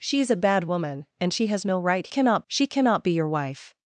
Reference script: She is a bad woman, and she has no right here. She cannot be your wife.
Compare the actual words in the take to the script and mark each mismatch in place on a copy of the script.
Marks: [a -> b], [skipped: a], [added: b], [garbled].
She is a bad woman, and she has no right [here. -> cannot] She cannot be your wife.